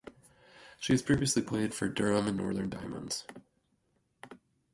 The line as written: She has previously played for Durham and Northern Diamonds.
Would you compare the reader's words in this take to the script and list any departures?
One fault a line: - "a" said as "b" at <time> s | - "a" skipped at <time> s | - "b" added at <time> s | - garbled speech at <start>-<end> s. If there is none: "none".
none